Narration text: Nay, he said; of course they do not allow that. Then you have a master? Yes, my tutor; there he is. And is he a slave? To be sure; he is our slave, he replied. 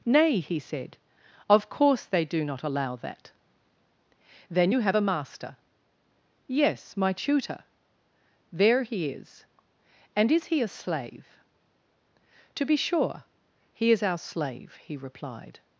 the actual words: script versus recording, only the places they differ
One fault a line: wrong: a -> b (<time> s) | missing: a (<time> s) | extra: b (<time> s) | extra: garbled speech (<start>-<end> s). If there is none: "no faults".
no faults